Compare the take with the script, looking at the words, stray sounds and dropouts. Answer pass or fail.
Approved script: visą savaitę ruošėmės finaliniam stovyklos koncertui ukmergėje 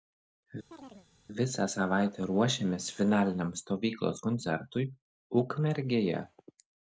fail